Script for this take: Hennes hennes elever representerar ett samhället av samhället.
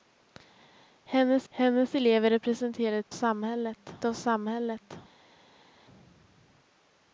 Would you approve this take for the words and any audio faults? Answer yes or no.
yes